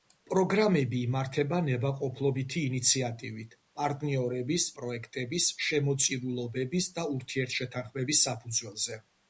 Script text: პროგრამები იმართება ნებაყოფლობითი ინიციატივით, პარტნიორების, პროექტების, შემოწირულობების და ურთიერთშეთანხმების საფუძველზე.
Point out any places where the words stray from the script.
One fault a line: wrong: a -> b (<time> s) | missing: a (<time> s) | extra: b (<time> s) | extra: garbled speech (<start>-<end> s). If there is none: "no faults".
no faults